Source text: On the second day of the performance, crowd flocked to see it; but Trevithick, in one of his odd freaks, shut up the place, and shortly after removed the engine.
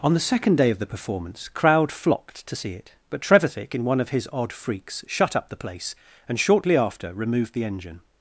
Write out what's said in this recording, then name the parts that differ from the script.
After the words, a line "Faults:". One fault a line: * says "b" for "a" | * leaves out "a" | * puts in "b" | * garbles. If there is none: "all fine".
On the second day of the performance, crowd flocked to see it; but Trevithick, in one of his odd freaks, shut up the place, and shortly after removed the engine.
Faults:
all fine